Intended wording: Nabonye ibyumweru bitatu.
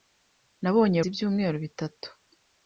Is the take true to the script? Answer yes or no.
yes